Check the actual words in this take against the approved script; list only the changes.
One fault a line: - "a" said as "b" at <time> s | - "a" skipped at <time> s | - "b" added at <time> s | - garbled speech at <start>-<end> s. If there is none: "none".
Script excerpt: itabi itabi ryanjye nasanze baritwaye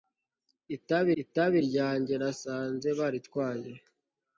none